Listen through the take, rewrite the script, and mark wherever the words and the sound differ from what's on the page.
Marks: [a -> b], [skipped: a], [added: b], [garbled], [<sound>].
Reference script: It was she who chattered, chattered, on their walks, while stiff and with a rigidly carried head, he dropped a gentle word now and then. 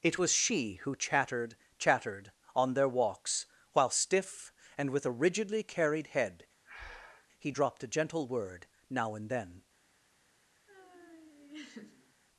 It was she who chattered, chattered, on their walks, while stiff and with a rigidly carried head, [breath] he dropped a gentle word now and then. [laugh]